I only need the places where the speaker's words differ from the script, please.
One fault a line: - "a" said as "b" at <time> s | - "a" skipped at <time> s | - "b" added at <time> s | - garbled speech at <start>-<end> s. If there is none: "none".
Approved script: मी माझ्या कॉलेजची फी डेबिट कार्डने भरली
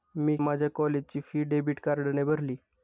none